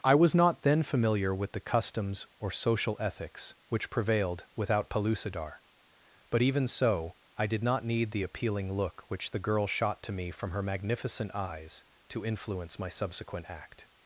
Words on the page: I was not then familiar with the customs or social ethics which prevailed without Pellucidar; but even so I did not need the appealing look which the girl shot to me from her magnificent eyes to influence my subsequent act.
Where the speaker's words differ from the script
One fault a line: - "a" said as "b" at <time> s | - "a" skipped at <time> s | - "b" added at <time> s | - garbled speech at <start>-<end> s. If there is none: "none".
none